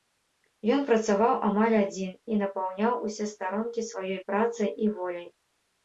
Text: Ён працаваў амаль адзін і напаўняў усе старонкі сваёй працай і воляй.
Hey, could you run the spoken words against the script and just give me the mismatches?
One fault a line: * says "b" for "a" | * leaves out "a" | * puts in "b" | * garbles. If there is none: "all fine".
all fine